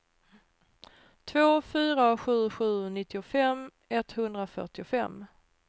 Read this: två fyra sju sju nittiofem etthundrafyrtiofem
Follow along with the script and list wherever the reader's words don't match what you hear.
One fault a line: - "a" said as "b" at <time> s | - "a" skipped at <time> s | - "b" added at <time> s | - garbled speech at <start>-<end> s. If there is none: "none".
none